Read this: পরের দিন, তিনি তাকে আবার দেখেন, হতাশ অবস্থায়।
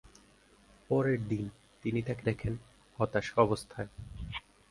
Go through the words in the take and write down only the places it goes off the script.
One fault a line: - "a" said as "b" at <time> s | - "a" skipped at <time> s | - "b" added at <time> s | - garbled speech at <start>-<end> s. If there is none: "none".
- "আবার" skipped at 2.2 s